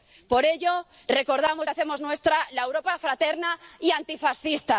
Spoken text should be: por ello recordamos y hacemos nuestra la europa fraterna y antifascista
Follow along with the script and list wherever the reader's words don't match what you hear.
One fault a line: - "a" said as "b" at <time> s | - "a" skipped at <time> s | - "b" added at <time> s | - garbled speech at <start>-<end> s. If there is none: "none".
none